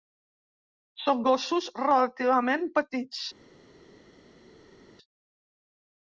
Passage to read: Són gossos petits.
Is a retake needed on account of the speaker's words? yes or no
yes